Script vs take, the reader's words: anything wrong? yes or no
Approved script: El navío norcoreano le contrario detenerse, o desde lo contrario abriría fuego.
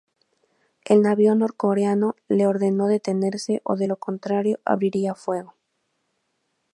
yes